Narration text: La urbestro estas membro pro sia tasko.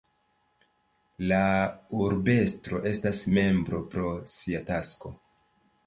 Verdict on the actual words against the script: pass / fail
pass